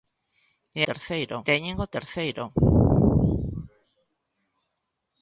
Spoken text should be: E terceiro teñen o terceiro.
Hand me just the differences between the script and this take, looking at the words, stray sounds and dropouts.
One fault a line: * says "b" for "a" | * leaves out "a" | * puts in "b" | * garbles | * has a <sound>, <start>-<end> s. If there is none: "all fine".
all fine